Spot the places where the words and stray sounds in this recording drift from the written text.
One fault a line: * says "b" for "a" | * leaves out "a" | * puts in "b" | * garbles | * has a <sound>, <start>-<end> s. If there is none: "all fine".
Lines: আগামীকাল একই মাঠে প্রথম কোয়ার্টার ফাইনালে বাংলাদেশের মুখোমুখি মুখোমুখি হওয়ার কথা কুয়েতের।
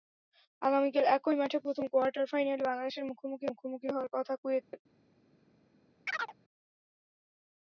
* has a dropout, 4.6-4.7 s
* has a chirp, 6.1-6.3 s